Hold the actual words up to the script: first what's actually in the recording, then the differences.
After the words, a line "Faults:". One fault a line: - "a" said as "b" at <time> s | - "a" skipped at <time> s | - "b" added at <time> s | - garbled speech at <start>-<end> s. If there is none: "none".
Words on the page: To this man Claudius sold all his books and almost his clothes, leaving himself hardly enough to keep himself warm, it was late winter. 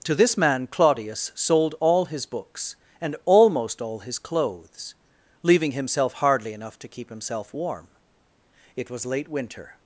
To this man Claudius sold all his books and almost all his clothes, leaving himself hardly enough to keep himself warm, it was late winter.
Faults:
- "all" added at 3.8 s